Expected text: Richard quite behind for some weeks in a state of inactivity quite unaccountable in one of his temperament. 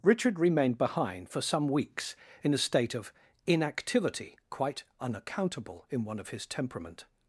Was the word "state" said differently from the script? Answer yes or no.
no